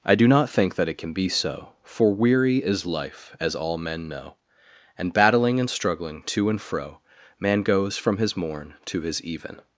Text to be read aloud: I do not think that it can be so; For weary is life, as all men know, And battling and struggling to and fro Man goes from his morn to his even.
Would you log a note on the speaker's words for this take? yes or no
no